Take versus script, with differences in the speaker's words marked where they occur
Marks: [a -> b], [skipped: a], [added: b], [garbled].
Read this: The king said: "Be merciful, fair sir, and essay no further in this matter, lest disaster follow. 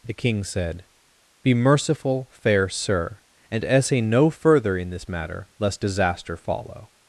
The king said: "Be merciful, fair sir, and essay no further in this matter, lest disaster follow.